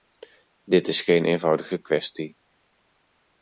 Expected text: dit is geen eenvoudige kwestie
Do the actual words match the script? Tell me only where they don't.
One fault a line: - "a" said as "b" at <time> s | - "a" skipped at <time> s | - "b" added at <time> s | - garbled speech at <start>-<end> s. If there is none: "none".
none